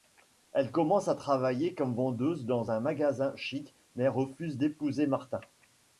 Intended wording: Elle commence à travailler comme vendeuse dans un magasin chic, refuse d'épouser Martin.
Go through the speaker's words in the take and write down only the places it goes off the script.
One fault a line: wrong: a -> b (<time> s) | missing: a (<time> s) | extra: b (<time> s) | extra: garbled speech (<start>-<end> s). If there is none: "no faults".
extra: mais (4.0 s)